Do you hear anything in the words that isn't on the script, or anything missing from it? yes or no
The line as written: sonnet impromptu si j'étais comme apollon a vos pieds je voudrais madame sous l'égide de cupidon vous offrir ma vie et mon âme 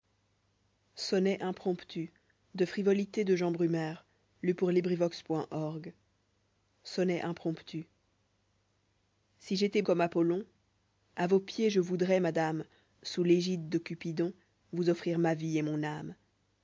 no